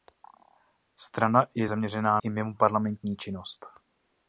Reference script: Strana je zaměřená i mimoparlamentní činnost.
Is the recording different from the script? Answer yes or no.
no